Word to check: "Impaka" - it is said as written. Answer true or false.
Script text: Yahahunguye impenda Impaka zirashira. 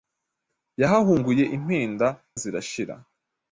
false